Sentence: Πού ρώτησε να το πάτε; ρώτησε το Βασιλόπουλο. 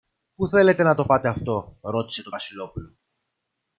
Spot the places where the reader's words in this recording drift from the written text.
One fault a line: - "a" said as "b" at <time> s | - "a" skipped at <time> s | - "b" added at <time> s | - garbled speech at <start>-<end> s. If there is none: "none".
- "ρώτησε" said as "θέλετε" at 0.5 s
- "αυτό" added at 1.3 s